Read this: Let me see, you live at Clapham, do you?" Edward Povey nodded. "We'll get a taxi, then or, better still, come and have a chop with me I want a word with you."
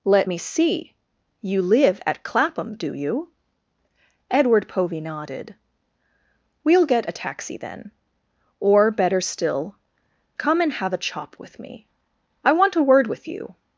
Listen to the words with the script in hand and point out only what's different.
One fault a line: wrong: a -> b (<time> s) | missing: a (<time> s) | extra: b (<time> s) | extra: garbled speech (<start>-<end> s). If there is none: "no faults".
no faults